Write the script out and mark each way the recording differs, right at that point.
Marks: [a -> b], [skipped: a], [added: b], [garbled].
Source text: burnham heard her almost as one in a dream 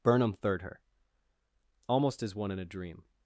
burnham [heard -> third] her almost as one in a dream